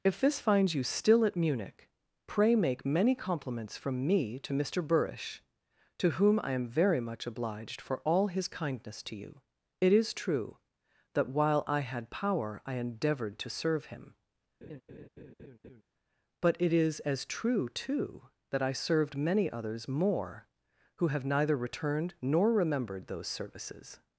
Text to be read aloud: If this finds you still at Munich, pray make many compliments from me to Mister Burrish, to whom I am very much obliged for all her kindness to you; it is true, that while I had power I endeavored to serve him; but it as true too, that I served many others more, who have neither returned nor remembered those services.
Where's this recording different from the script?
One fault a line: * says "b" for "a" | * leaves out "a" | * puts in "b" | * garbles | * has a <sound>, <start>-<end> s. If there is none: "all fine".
* says "his" for "her"
* has a laugh, 14.6-15.8 s
* puts in "is"